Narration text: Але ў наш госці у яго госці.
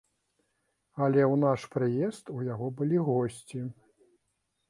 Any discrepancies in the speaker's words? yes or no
yes